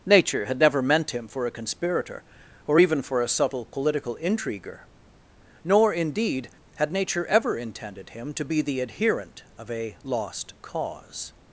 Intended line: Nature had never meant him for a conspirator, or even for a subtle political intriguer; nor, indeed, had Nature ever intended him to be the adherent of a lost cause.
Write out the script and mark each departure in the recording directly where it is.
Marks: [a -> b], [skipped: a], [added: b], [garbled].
Nature had never meant him for a conspirator, or even for a subtle political intriguer; nor, indeed, had Nature ever intended him to be the adherent of a lost cause.